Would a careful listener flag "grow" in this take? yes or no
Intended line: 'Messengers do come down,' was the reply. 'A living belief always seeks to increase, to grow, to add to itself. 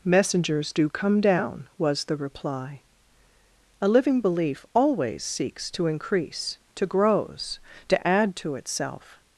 yes